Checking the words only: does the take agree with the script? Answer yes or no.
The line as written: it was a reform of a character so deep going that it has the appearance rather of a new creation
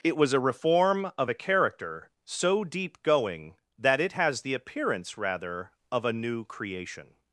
yes